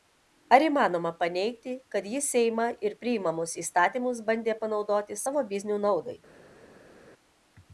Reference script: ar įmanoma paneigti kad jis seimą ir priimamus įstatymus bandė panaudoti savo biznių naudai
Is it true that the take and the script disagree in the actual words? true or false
false